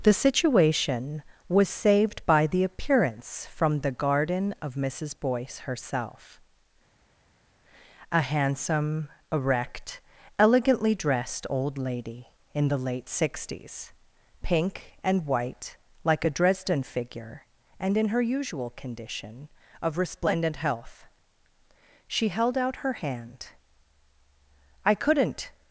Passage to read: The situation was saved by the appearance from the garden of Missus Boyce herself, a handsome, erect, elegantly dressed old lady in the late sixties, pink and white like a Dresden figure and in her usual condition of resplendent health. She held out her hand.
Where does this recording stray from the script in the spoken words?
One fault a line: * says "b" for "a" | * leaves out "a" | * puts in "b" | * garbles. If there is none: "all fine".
* puts in "I couldn't"